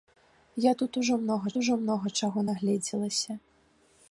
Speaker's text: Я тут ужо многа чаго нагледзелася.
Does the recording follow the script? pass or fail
fail